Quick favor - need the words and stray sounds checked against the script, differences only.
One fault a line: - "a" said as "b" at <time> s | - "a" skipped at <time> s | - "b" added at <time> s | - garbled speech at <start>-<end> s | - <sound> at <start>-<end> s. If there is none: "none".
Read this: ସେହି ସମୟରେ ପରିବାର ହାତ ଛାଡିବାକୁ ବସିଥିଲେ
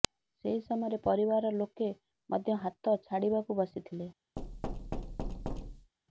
- "ଲୋକେ ମଧ୍ୟ" added at 1.6 s
- thud at 4.4-5.9 s